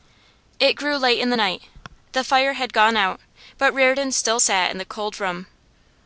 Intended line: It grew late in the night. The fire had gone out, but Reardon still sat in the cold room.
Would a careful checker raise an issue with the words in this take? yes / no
no